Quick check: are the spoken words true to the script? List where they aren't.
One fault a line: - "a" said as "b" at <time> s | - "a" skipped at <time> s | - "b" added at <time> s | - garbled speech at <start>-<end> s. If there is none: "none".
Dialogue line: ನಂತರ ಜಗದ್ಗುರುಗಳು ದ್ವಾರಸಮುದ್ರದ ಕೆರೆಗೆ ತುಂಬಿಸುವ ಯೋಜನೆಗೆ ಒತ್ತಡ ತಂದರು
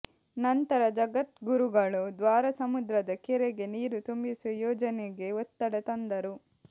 - "ನೀರು" added at 3.7 s